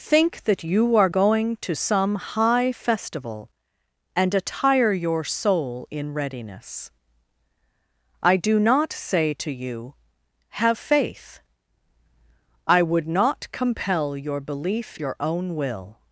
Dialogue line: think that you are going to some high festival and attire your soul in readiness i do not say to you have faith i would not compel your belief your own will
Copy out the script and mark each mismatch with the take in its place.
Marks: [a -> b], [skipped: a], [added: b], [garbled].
think that you are going to some high festival and attire your soul in readiness i do not say to you have faith i would not compel your belief your own will